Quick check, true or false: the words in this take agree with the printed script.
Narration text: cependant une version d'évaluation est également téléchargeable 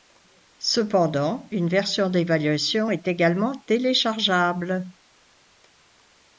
true